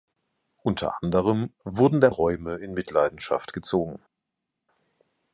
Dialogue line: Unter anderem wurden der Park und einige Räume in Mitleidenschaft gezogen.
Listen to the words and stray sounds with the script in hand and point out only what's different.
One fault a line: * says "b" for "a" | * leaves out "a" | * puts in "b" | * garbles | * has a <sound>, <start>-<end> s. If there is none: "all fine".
* leaves out "Park und einige"